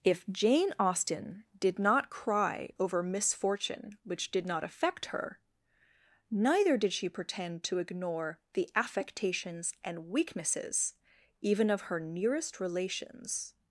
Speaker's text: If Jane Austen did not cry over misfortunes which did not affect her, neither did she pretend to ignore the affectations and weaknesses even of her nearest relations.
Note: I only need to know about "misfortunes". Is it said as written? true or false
false